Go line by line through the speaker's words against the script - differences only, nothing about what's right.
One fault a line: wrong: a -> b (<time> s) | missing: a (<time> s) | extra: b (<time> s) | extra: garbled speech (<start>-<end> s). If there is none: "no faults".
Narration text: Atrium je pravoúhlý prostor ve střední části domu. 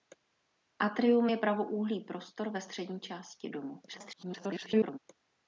extra: garbled speech (3.9-5.0 s)